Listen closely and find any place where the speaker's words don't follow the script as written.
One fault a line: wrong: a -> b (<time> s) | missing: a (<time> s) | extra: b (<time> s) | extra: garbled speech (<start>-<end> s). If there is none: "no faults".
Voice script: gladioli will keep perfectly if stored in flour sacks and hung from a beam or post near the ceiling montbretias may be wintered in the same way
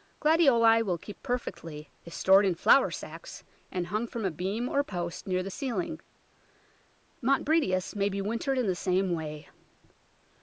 no faults